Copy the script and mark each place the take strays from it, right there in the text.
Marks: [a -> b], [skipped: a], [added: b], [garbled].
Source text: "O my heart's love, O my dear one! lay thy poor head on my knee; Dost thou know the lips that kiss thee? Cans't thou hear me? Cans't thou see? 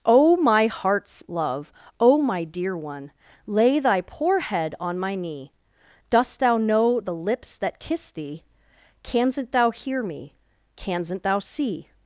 "O my heart's love, O my dear one! lay thy poor head on my knee; Dost thou know the lips that kiss thee? Cans't thou hear me? Cans't thou see?